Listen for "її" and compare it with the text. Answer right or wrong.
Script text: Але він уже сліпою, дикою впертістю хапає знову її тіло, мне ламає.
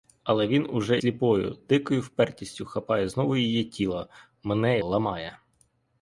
right